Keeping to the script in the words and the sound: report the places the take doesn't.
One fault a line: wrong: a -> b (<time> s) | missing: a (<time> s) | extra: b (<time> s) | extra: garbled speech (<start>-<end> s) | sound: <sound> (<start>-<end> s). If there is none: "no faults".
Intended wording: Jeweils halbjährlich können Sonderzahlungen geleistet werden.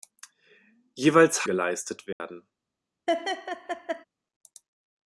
missing: halbjährlich können Sonderzahlungen (1.4 s)
sound: dropout (2.1-2.2 s)
sound: laugh (3.1-4.0 s)